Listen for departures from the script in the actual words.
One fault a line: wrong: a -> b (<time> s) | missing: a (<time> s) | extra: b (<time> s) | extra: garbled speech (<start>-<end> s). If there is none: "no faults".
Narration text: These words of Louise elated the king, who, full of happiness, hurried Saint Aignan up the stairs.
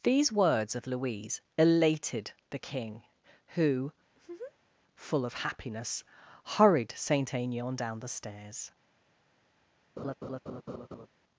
wrong: up -> down (7.7 s)